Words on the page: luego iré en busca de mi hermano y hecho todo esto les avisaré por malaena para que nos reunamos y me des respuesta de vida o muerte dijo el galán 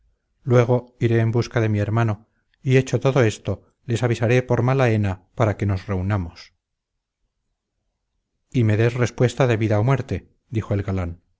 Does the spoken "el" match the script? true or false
true